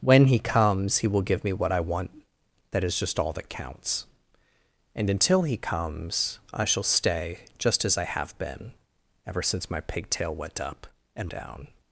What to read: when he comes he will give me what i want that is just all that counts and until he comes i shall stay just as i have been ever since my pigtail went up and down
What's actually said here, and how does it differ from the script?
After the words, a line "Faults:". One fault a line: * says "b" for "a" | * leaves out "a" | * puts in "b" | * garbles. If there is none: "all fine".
when he comes he will give me what i want that is just all that counts and until he comes i shall stay just as i have been ever since my pigtail went up and down
Faults:
all fine